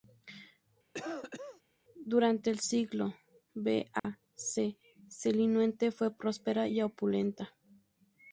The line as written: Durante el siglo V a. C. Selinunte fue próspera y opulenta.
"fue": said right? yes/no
yes